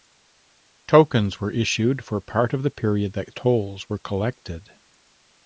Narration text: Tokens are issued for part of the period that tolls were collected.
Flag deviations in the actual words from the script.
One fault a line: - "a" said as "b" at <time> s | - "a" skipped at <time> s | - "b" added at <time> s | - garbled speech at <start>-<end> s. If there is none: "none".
- "are" said as "were" at 1.4 s